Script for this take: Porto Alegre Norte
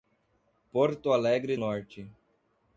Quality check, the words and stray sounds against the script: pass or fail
pass